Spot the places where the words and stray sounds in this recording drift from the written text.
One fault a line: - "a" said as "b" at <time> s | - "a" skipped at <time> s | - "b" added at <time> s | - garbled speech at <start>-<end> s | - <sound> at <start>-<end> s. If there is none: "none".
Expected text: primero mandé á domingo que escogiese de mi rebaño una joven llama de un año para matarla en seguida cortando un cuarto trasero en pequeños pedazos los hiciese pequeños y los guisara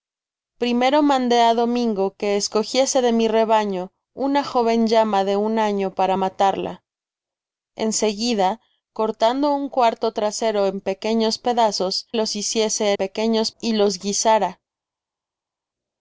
none